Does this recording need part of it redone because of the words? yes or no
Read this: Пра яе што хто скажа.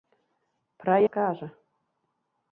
yes